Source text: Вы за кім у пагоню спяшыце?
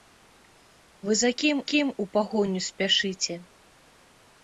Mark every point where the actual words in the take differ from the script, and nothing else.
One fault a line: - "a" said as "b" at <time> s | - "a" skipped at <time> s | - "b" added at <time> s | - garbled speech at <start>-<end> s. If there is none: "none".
- "кім" added at 1.7 s